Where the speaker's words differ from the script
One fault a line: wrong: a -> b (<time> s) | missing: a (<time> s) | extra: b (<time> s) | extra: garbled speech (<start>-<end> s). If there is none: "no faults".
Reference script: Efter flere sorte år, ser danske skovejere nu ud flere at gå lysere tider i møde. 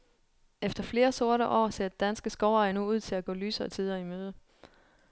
wrong: flere -> til (3.0 s)